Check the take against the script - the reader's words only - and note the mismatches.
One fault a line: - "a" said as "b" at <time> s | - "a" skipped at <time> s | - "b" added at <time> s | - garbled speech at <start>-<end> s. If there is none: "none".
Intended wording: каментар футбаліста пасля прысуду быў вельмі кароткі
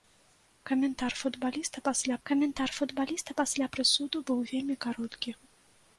- "каментар футбаліста пасля" added at 2.3 s